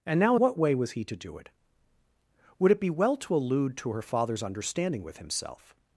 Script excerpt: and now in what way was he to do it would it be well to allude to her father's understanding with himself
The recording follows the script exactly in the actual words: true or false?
false